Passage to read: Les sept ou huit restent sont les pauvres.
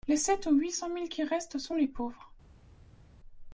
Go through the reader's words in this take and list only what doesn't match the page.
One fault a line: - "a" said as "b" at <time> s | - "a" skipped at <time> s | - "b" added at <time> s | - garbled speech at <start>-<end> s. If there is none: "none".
- "cent mille qui" added at 0.7 s